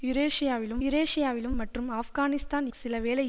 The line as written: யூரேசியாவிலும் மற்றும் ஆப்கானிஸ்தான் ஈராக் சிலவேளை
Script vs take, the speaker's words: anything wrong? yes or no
yes